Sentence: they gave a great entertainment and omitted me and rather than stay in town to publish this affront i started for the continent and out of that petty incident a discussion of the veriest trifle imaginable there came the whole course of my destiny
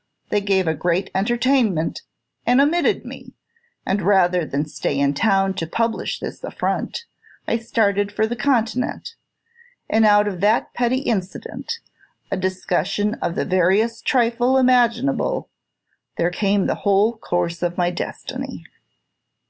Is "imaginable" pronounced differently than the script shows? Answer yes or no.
no